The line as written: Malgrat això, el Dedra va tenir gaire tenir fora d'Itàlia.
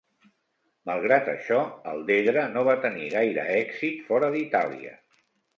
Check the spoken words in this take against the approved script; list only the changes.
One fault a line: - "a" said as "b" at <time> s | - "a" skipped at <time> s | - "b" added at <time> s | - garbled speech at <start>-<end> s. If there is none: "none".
- "no" added at 2.5 s
- "tenir" said as "èxit" at 3.6 s